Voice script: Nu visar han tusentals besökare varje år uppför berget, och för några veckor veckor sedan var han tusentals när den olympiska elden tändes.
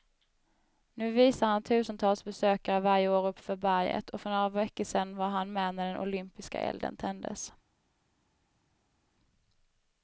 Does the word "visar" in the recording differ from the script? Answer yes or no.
no